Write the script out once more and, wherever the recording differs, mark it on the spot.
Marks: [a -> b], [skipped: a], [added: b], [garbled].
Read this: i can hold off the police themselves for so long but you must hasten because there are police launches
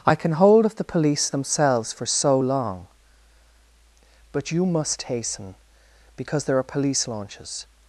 i can hold [off -> of] the police themselves for so long but you must hasten because there are police launches